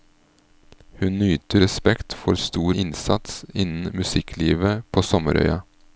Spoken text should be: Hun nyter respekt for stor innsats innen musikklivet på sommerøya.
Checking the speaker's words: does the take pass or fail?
pass